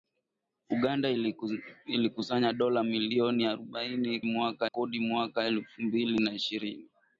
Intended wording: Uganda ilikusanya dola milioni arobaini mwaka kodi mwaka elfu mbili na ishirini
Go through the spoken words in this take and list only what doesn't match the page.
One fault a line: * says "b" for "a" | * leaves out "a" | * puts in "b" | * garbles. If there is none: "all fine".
all fine